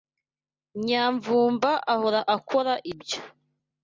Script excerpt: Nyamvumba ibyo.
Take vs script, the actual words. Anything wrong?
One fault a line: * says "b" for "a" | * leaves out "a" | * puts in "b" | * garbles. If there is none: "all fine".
* puts in "ahora akora"